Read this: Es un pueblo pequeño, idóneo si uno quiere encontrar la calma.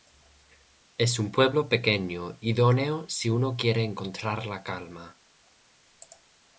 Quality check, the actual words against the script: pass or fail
pass